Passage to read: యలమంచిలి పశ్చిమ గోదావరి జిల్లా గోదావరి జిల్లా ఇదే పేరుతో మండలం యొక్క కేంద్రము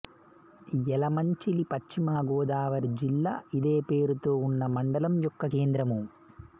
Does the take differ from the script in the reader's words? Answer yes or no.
yes